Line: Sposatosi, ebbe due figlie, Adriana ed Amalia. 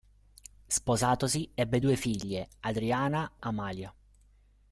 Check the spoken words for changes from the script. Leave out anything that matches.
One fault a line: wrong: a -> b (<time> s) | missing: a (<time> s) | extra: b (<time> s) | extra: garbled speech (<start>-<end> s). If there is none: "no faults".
missing: ed (3.4 s)